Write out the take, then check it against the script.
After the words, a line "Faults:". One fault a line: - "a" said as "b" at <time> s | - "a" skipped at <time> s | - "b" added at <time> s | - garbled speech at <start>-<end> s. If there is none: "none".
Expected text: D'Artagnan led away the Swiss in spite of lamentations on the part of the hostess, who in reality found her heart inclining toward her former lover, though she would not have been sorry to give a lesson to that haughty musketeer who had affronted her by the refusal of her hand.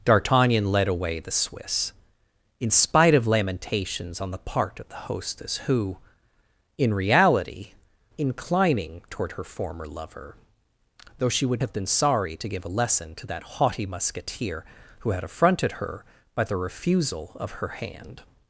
D'Artagnan led away the Swiss in spite of lamentations on the part of the hostess, who in reality inclining toward her former lover, though she would have been sorry to give a lesson to that haughty musketeer who had affronted her by the refusal of her hand.
Faults:
- "found her heart" skipped at 7.7 s
- "not" skipped at 11.6 s